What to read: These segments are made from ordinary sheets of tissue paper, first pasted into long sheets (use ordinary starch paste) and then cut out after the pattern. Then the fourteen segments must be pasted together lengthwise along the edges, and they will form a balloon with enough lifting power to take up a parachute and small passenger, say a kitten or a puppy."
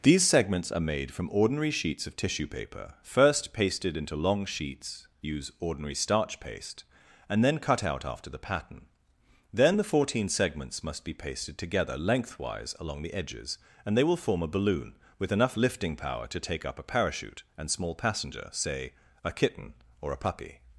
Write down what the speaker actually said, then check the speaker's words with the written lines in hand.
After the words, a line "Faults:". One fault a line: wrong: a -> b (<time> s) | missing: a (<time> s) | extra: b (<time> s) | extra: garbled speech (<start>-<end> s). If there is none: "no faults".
These segments are made from ordinary sheets of tissue paper, first pasted into long sheets (use ordinary starch paste) and then cut out after the pattern. Then the fourteen segments must be pasted together lengthwise along the edges, and they will form a balloon with enough lifting power to take up a parachute and small passenger, say a kitten or a puppy."
Faults:
no faults